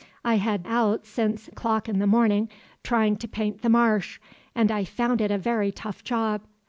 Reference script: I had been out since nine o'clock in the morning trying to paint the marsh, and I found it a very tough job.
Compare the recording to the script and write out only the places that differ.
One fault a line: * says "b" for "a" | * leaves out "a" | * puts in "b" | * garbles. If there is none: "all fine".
* leaves out "been"
* leaves out "nine"